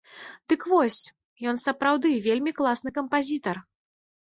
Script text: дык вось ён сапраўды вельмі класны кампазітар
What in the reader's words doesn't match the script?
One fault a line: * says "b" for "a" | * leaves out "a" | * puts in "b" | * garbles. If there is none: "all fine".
all fine